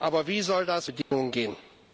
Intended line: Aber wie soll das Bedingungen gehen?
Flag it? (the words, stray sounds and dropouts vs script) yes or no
yes